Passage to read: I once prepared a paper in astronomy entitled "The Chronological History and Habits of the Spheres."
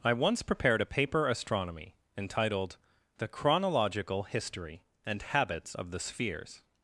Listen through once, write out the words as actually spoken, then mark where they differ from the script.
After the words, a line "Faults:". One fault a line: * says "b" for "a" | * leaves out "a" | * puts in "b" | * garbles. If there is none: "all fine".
I once prepared a paper astronomy entitled "The Chronological History and Habits of the Spheres."
Faults:
* leaves out "in"